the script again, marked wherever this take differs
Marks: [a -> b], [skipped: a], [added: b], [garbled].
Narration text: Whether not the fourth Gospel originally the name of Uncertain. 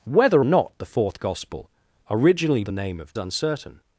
Whether not the fourth Gospel originally the name of Uncertain.